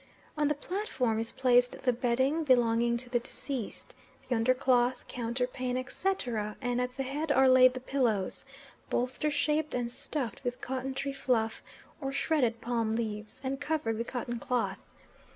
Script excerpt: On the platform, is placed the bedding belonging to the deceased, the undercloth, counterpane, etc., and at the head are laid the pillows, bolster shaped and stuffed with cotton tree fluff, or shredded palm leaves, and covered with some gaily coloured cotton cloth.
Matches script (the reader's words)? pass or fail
fail